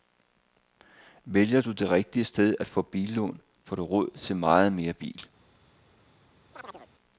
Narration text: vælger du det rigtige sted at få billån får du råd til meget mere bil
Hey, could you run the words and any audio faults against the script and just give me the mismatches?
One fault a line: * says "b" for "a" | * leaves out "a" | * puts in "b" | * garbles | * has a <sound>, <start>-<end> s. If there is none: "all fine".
* has a chirp, 6.5-6.9 s